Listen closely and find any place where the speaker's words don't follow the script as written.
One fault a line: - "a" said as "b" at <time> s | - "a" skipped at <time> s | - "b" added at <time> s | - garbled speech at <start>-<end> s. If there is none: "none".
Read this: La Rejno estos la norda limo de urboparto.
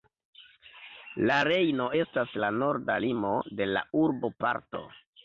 - "estos" said as "estas" at 2.0 s
- "la" added at 3.7 s